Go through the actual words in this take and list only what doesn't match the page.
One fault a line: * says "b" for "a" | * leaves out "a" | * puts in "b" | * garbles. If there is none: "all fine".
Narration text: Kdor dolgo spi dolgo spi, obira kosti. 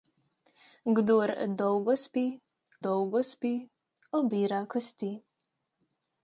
all fine